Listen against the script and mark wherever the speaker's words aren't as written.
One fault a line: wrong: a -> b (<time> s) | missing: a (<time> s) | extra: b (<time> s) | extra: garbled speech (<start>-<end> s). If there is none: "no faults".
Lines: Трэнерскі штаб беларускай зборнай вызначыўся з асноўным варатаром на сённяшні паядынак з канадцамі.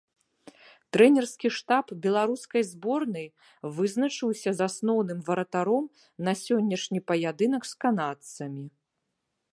no faults